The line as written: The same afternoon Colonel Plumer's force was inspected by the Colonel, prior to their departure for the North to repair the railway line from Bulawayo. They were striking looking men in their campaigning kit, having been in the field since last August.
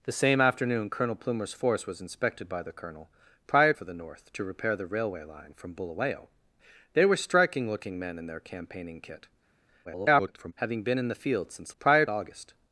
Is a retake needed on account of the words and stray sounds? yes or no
yes